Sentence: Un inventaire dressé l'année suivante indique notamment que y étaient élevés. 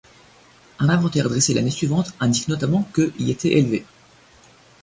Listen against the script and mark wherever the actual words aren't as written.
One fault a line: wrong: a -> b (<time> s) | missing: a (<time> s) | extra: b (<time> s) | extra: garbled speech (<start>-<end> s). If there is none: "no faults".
no faults